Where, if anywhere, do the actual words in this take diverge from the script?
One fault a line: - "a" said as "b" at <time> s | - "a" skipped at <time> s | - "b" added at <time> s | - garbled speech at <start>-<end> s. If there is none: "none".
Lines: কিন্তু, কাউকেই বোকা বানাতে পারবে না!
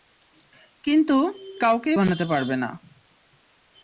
- "বোকা" skipped at 2.0 s